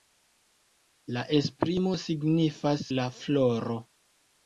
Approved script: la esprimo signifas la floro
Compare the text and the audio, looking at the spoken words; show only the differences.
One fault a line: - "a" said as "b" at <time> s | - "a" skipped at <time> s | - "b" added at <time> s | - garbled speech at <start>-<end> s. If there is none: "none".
none